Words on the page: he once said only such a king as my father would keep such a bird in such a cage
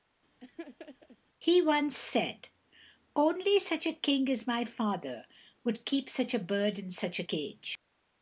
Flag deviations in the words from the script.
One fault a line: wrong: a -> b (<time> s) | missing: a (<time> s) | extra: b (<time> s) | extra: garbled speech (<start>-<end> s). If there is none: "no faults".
no faults